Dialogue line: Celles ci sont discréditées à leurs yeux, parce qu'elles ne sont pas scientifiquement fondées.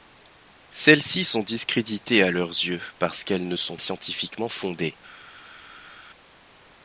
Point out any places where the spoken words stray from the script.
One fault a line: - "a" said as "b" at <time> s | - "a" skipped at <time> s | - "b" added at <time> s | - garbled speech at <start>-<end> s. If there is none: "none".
- "pas" skipped at 3.8 s